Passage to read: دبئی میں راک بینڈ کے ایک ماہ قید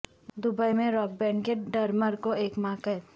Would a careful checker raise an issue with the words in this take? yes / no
yes